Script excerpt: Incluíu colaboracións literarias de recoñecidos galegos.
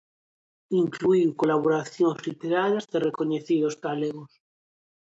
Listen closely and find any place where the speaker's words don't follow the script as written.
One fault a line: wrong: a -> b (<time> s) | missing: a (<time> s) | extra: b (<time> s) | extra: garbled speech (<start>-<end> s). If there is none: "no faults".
no faults